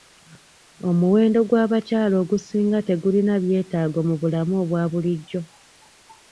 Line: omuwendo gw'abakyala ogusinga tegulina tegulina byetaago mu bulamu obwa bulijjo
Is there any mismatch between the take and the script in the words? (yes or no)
yes